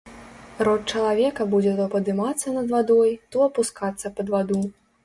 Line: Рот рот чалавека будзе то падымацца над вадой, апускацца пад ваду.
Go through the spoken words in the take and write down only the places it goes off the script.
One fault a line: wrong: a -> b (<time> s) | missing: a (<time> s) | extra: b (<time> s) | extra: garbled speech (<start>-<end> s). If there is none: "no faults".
missing: рот (0.9 s)
extra: то (3.4 s)